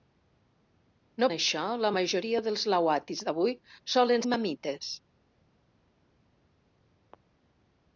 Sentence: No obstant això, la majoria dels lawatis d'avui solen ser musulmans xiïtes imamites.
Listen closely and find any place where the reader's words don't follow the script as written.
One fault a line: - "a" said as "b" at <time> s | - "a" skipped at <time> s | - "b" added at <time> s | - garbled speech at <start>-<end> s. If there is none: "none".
- "obstant" skipped at 1.3 s
- "ser musulmans xiïtes" skipped at 4.3 s